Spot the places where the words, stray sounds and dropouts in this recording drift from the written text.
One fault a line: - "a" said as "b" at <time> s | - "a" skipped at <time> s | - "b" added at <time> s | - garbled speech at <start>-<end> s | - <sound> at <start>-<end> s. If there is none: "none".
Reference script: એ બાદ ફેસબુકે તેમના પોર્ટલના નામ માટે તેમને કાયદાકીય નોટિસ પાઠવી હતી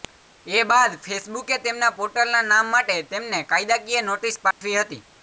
- dropout at 4.5-4.6 s